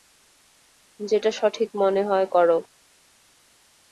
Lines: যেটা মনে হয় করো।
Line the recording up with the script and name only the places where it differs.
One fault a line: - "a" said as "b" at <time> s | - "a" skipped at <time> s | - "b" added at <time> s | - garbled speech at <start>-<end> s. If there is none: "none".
- "সঠিক" added at 1.3 s